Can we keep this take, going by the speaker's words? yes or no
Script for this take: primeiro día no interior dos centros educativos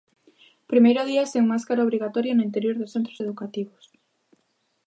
no